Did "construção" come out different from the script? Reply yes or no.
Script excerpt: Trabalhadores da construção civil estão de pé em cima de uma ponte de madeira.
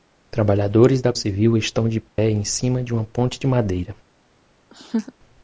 yes